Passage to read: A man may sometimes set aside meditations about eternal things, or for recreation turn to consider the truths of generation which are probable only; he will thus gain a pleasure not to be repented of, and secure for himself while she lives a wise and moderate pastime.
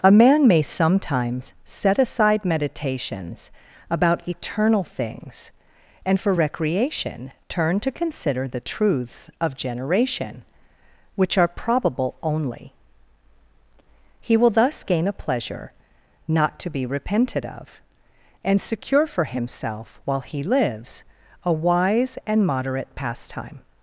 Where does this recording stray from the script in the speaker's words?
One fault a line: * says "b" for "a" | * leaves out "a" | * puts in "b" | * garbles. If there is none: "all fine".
* says "and" for "or"
* says "he" for "she"